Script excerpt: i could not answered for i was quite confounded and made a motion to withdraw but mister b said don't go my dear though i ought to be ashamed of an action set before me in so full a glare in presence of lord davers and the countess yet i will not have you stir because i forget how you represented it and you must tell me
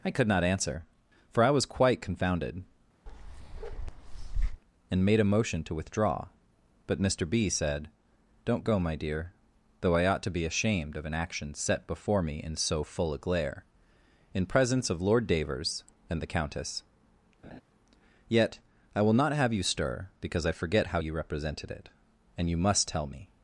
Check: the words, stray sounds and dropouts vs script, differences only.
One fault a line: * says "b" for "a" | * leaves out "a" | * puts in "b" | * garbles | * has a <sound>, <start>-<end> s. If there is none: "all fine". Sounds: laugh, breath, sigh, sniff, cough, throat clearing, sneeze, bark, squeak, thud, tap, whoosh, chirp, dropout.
* says "answer" for "answered"
* has a bark, 3.1-4.6 s
* has a laugh, 17.4-17.6 s